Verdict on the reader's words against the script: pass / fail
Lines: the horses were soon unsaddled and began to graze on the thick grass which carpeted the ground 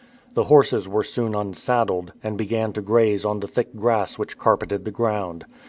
pass